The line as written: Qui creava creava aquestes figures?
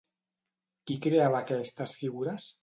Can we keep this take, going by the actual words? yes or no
no